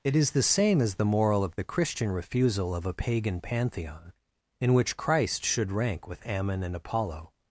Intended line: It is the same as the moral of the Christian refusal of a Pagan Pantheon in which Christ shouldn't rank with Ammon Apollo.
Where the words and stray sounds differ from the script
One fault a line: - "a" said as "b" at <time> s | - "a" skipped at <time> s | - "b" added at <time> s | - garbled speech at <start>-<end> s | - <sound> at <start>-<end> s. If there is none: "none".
- "shouldn't" said as "should" at 5.5 s
- "and" added at 6.6 s